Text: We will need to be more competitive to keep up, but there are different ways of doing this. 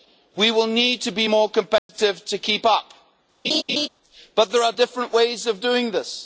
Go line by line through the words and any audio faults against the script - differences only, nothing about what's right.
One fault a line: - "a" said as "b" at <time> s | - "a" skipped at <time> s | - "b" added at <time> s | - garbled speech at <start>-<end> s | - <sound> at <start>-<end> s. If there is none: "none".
- dropout at 1.8-1.9 s
- laugh at 3.4-3.9 s